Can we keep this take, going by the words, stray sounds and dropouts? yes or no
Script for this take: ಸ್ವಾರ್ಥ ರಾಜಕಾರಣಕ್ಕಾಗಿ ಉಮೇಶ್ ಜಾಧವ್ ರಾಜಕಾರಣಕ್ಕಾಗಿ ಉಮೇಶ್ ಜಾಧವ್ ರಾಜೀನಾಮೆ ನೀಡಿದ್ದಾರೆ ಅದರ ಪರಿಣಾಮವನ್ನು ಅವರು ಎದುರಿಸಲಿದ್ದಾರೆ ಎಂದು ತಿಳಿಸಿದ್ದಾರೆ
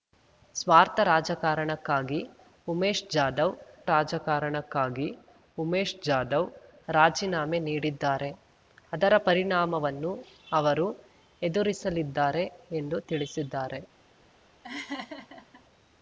no